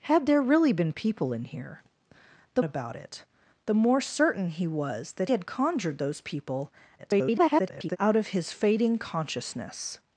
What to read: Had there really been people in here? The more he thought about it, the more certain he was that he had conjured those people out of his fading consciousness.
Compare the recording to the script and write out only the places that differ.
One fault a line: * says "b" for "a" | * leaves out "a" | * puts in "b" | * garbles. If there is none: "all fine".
* leaves out "more he thought"
* leaves out "he"
* garbles